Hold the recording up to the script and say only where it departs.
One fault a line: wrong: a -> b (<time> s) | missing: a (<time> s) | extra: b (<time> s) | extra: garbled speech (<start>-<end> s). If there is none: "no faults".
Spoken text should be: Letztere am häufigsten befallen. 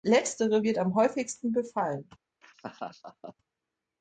extra: wird (0.6 s)